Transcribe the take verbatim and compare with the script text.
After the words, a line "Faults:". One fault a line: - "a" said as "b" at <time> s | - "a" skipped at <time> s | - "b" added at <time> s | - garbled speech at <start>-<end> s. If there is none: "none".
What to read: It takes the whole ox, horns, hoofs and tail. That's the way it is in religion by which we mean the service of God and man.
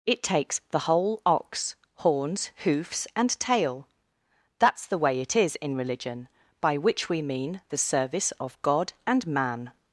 It takes the whole ox, horns, hoofs and tail. That's the way it is in religion by which we mean the service of God and man.
Faults:
none